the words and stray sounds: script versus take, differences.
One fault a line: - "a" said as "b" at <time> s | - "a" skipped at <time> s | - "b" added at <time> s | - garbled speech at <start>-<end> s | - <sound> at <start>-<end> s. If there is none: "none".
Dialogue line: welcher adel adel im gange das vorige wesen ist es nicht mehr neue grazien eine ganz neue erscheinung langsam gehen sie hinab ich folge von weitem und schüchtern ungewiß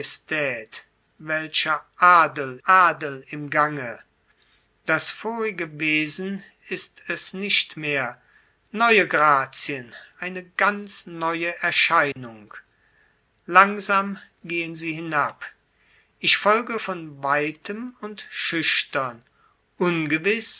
- dropout at 12.1-12.2 s